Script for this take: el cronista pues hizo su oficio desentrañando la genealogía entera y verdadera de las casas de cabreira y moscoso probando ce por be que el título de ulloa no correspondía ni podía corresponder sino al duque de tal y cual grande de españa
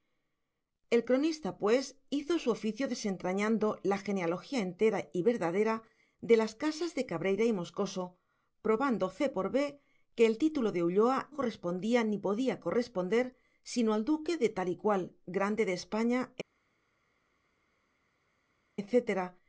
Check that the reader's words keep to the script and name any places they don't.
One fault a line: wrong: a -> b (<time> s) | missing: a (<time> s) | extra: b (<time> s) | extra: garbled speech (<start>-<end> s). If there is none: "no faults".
missing: no (11.3 s)